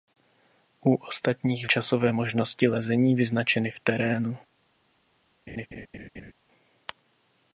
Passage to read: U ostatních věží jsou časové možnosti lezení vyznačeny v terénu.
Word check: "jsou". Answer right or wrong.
wrong